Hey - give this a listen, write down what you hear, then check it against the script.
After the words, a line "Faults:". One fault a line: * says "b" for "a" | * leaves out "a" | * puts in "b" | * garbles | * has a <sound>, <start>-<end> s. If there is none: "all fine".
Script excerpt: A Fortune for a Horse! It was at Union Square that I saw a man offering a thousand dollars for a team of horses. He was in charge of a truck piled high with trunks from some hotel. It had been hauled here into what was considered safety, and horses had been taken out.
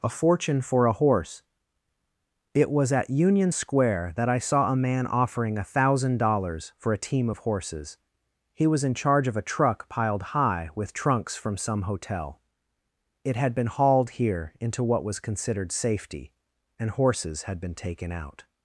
A Fortune for a Horse! It was at Union Square that I saw a man offering a thousand dollars for a team of horses. He was in charge of a truck piled high with trunks from some hotel. It had been hauled here into what was considered safety, and horses had been taken out.
Faults:
all fine